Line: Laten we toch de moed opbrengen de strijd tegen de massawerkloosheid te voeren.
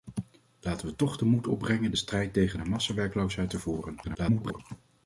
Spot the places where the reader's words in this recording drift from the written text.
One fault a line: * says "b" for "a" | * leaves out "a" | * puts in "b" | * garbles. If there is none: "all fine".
* garbles